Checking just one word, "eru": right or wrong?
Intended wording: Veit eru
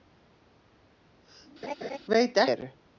right